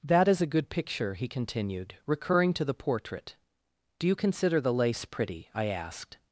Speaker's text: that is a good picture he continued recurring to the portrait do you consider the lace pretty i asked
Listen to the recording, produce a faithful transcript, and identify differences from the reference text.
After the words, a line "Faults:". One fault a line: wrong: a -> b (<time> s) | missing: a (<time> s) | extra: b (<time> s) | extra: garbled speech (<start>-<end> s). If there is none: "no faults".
that is a good picture he continued recurring to the portrait do you consider the lace pretty i asked
Faults:
no faults